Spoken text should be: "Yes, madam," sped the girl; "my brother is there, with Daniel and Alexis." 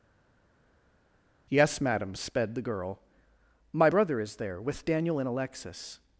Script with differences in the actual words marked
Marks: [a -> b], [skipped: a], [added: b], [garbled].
"Yes, madam," sped the girl; "my brother is there, with Daniel and Alexis."